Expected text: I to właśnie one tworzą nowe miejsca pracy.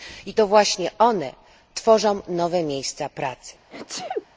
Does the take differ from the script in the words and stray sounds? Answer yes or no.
yes